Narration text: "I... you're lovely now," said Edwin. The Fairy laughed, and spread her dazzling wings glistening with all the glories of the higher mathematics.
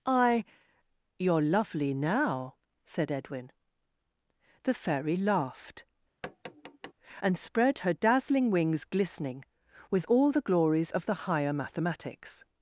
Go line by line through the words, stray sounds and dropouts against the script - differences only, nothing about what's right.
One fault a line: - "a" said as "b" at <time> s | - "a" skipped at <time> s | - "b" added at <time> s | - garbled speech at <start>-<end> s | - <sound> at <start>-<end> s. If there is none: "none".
- tap at 6.2-6.9 s